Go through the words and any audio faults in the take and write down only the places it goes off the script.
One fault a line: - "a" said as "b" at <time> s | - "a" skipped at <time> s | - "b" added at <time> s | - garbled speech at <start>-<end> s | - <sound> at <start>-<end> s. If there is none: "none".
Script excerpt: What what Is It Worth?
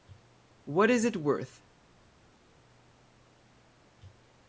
- "what" skipped at 0.9 s